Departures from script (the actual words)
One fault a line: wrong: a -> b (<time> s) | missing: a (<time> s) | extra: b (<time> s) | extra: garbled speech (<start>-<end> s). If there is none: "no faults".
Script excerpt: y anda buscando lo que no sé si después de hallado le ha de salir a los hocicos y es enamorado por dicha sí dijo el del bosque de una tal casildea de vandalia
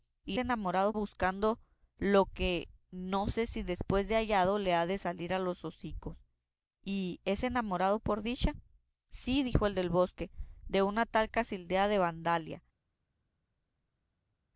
wrong: anda -> enamorado (0.4 s)